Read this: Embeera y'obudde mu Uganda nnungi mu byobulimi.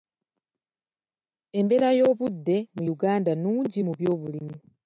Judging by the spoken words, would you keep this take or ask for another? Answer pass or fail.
pass